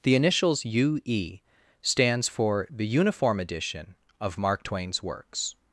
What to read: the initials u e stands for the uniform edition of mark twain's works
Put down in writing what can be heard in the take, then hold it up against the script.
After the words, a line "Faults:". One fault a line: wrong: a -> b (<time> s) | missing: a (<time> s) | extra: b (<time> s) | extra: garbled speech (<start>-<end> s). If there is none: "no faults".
the initials u e stands for the uniform edition of mark twain's works
Faults:
no faults